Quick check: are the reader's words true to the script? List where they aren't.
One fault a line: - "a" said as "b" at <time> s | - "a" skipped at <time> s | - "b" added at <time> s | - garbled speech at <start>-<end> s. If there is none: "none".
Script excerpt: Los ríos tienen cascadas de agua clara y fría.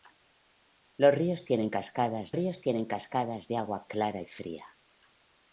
- "ríos tienen cascadas" added at 2.3 s